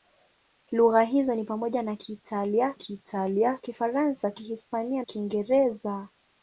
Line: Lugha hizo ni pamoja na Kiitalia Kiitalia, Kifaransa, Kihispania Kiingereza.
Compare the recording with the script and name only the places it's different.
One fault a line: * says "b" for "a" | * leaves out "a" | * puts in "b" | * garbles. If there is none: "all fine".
all fine